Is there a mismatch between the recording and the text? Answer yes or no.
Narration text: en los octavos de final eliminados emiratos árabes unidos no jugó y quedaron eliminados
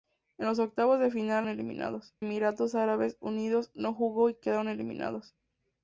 no